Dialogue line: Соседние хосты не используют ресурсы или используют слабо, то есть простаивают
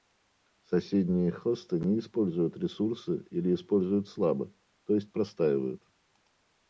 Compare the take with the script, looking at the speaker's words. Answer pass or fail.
pass